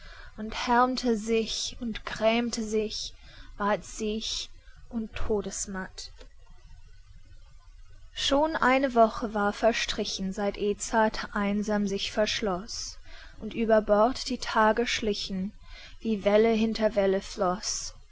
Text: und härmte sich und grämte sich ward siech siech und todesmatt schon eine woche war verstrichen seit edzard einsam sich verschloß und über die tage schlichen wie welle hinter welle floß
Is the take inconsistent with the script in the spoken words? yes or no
yes